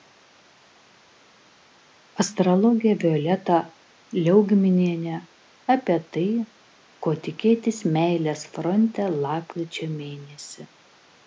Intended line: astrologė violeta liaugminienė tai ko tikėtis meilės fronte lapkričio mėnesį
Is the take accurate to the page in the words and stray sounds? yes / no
no